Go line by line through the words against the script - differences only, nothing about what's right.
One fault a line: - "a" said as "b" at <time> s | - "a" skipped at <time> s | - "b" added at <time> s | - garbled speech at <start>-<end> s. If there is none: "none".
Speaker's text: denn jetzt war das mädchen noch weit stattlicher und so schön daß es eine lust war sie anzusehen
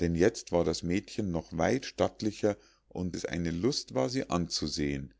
- "so schön daß" skipped at 3.1 s